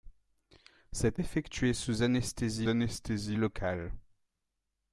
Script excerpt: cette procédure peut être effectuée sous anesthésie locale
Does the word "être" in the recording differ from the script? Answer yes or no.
yes